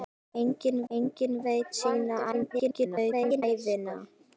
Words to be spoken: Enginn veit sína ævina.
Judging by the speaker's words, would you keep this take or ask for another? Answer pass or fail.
fail